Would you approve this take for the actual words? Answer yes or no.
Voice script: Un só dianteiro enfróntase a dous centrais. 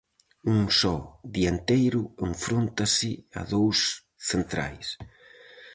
yes